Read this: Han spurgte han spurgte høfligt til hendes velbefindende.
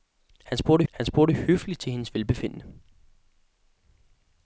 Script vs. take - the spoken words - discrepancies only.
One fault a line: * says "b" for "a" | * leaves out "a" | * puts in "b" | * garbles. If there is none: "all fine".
all fine